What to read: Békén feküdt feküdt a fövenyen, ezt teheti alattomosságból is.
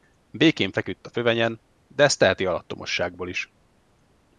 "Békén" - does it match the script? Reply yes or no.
yes